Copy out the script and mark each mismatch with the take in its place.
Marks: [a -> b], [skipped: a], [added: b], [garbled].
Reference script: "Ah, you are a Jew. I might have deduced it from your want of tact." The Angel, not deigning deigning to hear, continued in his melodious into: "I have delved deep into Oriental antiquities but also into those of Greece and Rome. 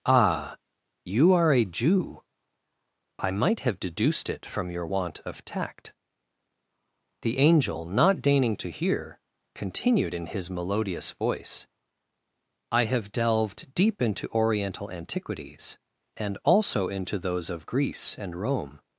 "Ah, you are a Jew. I might have deduced it from your want of tact." The Angel, not deigning [skipped: deigning] to hear, continued in his melodious [into: -> voice] "I have delved deep into Oriental antiquities [but -> and] also into those of Greece and Rome.